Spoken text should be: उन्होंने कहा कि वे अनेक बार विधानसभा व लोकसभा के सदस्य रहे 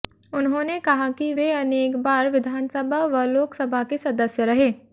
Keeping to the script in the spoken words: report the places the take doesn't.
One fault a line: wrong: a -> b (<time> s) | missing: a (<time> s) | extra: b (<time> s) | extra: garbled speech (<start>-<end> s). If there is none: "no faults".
no faults